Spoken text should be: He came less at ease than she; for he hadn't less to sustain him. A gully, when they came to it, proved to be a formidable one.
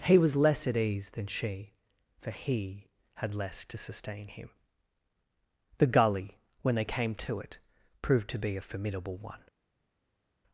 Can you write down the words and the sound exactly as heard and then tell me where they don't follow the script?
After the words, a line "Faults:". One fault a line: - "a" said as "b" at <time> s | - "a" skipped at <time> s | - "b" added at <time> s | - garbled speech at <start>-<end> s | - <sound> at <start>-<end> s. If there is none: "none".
He was less at ease than she; for he had less to sustain him. The gully, when they came to it, proved to be a formidable one.
Faults:
- "came" said as "was" at 0.2 s
- "hadn't" said as "had" at 3.2 s
- "A" said as "The" at 5.8 s